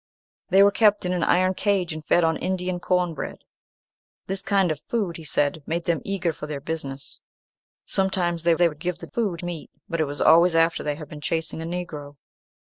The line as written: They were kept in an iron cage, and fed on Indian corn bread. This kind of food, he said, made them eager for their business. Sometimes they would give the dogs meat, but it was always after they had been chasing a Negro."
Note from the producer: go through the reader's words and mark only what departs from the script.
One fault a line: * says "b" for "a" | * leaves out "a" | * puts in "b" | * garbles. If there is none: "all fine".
* puts in "they"
* says "food" for "dogs"